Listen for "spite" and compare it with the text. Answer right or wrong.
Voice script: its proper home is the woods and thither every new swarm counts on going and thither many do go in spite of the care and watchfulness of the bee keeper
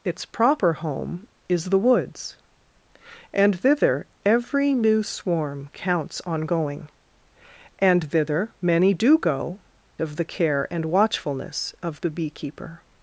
wrong